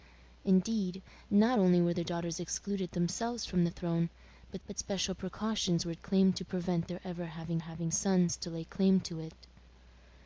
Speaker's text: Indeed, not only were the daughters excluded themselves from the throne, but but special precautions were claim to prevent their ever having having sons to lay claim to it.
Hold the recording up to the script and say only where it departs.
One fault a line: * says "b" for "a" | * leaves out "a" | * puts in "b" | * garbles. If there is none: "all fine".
all fine